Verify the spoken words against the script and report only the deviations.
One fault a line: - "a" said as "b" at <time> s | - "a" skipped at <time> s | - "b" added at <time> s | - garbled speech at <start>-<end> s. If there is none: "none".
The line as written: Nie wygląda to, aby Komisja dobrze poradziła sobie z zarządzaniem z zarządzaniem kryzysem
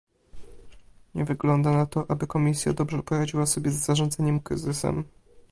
- "na" added at 1.7 s
- "z zarządzaniem" skipped at 4.4 s